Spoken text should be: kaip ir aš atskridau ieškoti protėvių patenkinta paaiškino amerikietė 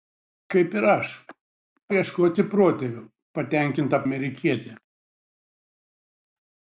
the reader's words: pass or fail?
fail